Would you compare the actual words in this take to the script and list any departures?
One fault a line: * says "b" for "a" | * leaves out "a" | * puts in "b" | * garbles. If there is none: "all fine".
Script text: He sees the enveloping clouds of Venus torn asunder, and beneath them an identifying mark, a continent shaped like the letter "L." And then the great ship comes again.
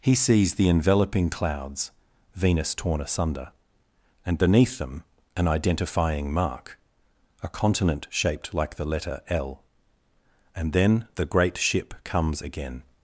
* leaves out "of"